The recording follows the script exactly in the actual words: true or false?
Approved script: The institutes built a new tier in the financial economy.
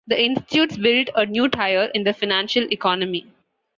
true